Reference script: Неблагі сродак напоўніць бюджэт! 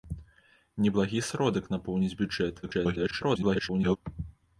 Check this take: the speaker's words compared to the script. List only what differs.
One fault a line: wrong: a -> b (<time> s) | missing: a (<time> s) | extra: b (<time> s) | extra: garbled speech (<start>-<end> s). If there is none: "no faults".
extra: garbled speech (2.6-4.0 s)